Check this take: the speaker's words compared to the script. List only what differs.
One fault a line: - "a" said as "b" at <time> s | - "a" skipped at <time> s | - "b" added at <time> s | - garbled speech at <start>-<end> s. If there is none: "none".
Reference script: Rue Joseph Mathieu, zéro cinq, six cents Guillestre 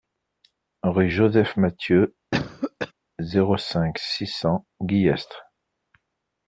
none